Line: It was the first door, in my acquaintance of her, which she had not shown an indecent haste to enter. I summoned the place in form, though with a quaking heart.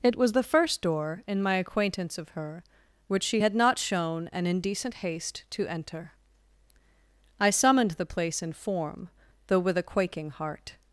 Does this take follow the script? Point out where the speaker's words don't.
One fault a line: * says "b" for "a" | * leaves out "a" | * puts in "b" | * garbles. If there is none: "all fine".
all fine